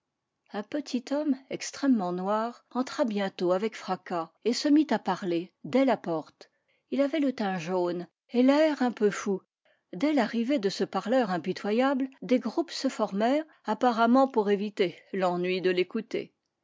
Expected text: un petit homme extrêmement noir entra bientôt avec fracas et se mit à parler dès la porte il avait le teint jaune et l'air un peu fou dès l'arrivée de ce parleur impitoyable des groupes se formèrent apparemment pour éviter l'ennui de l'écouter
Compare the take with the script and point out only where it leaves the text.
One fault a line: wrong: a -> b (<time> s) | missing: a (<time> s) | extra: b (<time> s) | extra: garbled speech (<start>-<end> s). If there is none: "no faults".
no faults